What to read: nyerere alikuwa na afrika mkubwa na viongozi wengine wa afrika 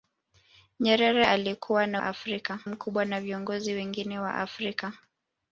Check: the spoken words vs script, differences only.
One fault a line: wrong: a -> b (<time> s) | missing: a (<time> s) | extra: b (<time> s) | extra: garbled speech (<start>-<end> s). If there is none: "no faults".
no faults